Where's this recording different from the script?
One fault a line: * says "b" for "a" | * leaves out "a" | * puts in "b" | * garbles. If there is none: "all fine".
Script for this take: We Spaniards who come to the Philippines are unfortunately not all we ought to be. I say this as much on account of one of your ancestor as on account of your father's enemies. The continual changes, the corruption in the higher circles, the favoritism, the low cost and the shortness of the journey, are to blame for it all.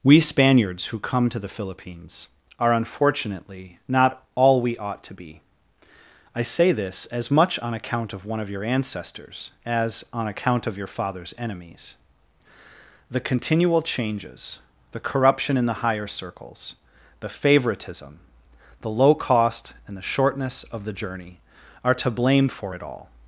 * says "ancestors" for "ancestor"